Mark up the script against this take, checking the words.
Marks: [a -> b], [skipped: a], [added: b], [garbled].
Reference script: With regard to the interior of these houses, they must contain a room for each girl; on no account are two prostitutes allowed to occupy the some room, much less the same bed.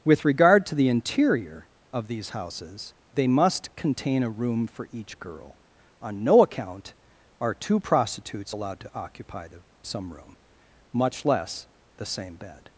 With regard to the interior of these houses, they must contain a room for each girl; on no account are two prostitutes allowed to occupy the some room, much less the same bed.